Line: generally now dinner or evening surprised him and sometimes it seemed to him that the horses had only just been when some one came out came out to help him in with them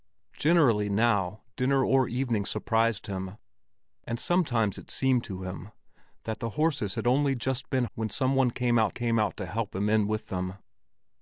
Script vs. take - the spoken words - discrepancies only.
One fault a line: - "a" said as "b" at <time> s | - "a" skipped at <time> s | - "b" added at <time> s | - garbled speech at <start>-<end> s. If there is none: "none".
none